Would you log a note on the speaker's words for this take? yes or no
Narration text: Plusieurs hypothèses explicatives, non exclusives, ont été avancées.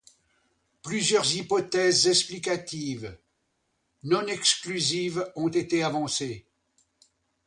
no